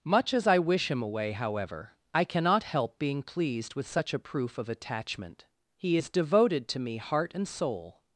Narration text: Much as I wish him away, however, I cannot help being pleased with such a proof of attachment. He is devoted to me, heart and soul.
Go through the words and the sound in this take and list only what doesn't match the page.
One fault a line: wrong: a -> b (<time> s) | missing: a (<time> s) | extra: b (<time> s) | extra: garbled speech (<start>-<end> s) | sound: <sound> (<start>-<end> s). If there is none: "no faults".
no faults